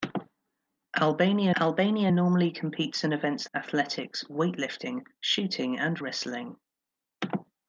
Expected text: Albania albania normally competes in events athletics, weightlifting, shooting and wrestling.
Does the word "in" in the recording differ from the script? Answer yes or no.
no